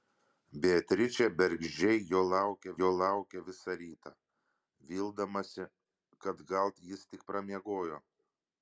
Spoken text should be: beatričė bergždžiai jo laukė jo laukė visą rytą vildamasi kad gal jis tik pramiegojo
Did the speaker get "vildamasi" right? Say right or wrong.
right